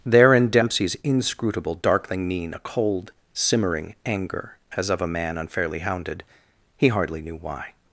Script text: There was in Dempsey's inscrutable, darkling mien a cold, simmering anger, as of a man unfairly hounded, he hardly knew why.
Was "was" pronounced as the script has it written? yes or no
no